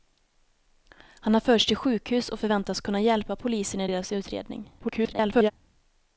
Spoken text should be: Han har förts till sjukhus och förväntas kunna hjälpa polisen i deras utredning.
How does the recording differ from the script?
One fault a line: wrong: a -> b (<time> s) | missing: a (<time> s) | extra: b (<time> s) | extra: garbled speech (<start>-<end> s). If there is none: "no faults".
extra: garbled speech (4.8-5.5 s)